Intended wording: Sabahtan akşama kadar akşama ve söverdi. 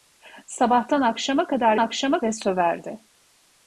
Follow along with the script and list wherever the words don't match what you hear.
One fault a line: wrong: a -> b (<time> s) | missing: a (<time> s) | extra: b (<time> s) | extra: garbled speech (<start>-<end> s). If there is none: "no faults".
no faults